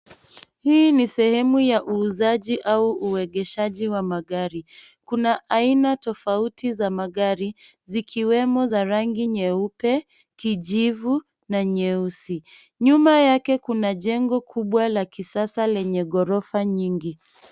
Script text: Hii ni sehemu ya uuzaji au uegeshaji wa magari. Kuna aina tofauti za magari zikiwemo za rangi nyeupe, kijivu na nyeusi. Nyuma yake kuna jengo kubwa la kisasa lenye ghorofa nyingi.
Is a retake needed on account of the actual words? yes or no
no